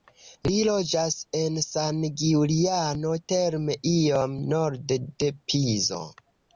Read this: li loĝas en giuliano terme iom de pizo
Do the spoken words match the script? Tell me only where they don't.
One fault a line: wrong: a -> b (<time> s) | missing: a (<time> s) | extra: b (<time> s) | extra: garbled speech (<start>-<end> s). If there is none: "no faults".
extra: san (1.6 s)
extra: norde (4.6 s)